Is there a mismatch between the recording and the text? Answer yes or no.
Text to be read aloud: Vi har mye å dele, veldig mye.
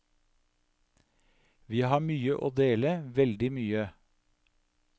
no